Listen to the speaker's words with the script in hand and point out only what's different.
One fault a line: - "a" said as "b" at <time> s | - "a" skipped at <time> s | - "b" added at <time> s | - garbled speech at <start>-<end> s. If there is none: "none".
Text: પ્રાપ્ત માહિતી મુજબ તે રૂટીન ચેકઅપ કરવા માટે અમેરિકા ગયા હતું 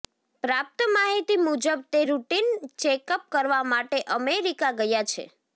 - "હતું" said as "છે" at 5.1 s